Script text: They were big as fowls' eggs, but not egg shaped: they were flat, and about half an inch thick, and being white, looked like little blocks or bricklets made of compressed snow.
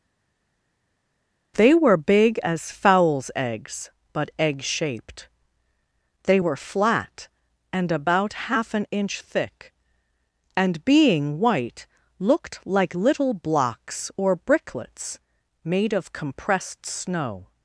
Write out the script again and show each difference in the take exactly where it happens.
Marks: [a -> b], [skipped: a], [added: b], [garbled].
They were big as fowls' eggs, but [skipped: not] egg shaped: they were flat, and about half an inch thick, and being white, looked like little blocks or bricklets made of compressed snow.